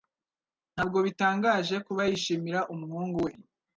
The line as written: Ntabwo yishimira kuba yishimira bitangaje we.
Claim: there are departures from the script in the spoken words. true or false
true